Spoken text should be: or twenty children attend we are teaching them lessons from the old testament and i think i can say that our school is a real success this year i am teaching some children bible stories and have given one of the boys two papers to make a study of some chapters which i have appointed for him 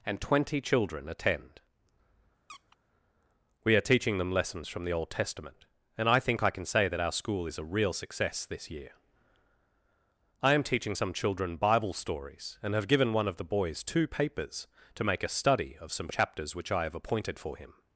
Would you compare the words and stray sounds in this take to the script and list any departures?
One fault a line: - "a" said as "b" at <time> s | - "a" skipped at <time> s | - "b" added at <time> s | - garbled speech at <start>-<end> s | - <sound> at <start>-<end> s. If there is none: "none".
- "or" said as "and" at 0.1 s
- squeak at 2.5-2.8 s